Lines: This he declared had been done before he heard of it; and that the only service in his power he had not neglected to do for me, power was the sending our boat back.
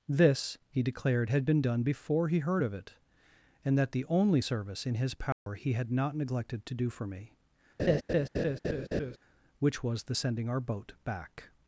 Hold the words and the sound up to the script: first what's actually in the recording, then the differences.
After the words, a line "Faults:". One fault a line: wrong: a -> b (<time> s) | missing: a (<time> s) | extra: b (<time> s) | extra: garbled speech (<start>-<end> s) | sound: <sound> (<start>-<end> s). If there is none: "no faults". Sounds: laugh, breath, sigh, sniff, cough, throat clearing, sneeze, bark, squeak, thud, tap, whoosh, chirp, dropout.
This he declared had been done before he heard of it; and that the only service in his power he had not neglected to do for me, which was the sending our boat back.
Faults:
sound: dropout (5.3-5.5 s)
sound: laugh (7.8-9.2 s)
wrong: power -> which (9.6 s)